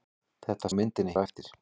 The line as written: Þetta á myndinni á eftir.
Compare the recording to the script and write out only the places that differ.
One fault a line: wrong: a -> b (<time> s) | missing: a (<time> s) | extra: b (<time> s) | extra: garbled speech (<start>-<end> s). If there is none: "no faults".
no faults